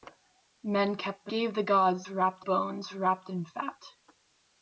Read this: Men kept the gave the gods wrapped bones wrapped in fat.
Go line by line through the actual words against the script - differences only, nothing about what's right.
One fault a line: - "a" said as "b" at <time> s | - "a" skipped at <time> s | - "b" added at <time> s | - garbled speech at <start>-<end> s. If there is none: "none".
none